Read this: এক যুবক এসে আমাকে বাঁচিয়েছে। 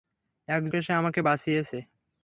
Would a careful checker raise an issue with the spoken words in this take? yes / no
yes